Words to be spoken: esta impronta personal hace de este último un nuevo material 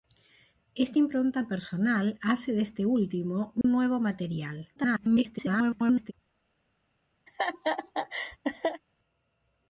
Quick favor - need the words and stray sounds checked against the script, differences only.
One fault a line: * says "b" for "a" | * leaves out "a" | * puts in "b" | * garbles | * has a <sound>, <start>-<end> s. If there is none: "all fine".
* has a dropout, 3.6-3.6 s
* garbles
* has a laugh, 7.3-8.8 s